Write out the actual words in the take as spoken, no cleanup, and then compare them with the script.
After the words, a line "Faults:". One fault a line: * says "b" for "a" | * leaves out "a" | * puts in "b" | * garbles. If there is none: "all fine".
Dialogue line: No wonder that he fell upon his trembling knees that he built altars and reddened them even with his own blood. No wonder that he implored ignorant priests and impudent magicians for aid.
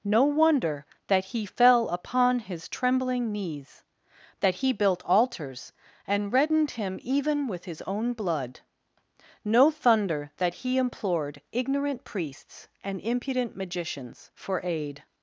No wonder that he fell upon his trembling knees that he built altars and reddened him even with his own blood. No thunder that he implored ignorant priests and impudent magicians for aid.
Faults:
* says "him" for "them"
* says "thunder" for "wonder"